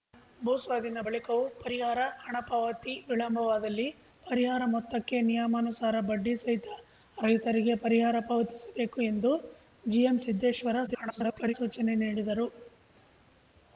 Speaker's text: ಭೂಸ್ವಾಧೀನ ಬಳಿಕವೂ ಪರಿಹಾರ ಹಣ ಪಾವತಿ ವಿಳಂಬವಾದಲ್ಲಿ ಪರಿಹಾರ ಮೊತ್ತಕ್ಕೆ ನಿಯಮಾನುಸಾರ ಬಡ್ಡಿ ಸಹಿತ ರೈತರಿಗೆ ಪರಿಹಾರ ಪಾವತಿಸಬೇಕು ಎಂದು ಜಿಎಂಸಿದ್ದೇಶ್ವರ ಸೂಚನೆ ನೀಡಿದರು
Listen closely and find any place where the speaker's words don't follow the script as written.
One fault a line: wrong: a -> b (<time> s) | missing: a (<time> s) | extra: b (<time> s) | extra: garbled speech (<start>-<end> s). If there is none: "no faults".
extra: garbled speech (10.9-11.5 s)